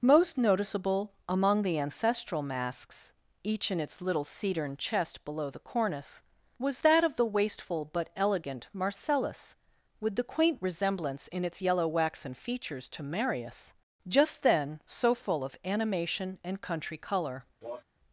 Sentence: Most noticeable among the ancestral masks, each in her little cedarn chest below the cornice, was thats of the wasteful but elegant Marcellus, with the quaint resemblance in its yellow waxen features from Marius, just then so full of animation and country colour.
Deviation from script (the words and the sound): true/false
true